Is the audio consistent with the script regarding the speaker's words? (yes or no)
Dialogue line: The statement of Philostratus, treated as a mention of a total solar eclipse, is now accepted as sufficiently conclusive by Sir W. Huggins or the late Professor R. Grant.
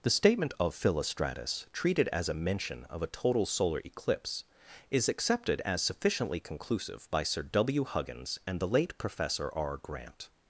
no